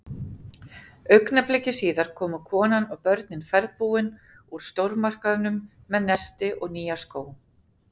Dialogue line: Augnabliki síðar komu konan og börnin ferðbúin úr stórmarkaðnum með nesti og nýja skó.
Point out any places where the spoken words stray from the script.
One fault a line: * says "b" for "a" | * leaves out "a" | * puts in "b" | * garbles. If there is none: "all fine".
all fine